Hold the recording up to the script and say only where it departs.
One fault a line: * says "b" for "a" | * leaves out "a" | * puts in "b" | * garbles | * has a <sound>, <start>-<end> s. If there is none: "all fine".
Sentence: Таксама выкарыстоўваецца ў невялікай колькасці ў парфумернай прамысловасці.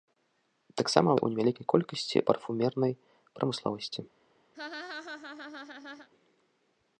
* leaves out "выкарыстоўваецца"
* leaves out "ў"
* has a laugh, 4.5-6.1 s